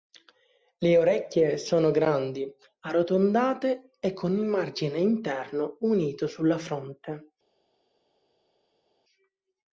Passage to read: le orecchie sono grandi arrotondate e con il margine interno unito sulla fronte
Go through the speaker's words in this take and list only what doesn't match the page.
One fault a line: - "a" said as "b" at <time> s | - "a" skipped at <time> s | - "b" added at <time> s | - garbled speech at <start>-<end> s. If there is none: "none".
none